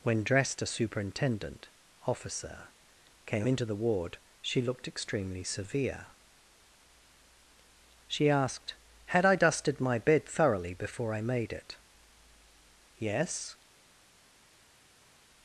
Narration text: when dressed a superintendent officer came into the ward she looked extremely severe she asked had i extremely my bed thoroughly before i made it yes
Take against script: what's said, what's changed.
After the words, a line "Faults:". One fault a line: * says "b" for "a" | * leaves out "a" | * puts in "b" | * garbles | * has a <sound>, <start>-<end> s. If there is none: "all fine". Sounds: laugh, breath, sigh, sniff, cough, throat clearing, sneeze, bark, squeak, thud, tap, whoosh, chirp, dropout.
when dressed a superintendent officer came into the ward she looked extremely severe she asked had i dusted my bed thoroughly before i made it yes
Faults:
* says "dusted" for "extremely"